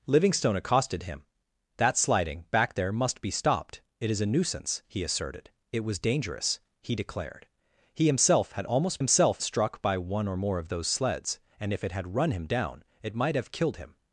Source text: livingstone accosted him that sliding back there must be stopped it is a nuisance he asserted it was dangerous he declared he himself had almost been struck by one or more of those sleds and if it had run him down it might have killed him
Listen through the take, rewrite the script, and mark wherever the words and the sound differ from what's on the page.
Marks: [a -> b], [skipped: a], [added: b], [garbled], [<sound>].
livingstone accosted him that sliding back there must be stopped it is a nuisance he asserted it was dangerous he declared he himself had almost [been -> himself] struck by one or more of those sleds and if it had run him down it might have killed him